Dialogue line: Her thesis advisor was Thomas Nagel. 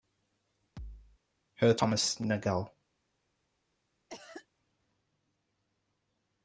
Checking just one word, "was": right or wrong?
wrong